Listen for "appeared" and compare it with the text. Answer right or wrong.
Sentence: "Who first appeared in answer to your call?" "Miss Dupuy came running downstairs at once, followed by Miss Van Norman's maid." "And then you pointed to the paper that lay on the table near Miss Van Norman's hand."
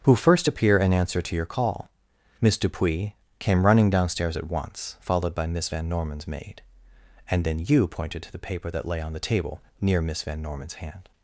wrong